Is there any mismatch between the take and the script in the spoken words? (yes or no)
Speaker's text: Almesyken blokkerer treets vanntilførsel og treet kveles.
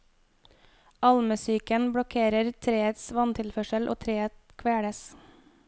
no